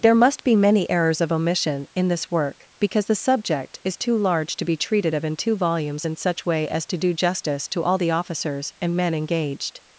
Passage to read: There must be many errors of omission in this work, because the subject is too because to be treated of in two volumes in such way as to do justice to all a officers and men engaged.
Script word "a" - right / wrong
wrong